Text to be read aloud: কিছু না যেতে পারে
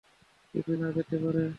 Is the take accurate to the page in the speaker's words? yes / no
yes